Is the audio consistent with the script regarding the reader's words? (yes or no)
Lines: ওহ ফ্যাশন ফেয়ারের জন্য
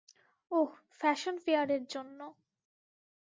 yes